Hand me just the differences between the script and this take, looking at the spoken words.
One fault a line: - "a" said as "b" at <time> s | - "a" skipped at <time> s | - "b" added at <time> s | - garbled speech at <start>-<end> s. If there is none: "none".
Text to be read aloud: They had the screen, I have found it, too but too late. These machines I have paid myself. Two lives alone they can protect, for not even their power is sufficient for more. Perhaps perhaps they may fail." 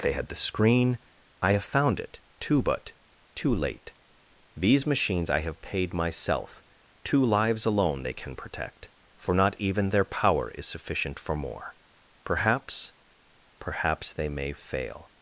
none